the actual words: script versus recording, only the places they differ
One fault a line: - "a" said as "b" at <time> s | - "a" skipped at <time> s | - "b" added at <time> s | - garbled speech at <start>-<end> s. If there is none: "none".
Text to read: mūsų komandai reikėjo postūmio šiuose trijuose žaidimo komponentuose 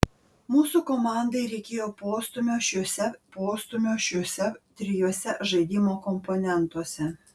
- "postūmio šiuose" added at 3.3 s